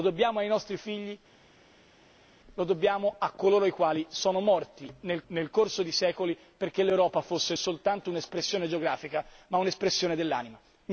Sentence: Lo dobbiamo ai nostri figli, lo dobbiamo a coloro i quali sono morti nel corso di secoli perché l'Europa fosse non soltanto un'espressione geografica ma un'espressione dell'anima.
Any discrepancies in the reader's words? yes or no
yes